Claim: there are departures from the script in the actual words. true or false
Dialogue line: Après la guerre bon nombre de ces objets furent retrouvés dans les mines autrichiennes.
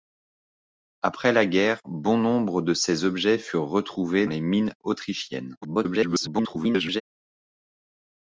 true